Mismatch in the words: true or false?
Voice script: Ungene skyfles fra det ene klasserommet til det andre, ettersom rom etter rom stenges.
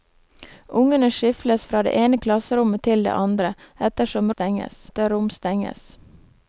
true